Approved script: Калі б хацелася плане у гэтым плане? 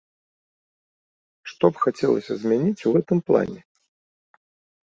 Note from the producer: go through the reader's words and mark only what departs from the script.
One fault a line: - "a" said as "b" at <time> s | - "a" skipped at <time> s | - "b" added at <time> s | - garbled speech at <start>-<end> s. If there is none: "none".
- "Калі" said as "Што" at 1.5 s
- "плане" said as "змяніць" at 2.5 s